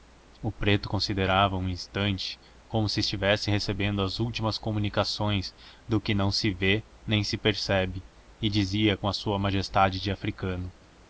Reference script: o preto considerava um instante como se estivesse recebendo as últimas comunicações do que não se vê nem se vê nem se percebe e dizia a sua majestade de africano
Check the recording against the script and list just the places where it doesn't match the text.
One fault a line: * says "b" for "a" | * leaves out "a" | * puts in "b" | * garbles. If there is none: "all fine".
* leaves out "vê nem se"
* puts in "com"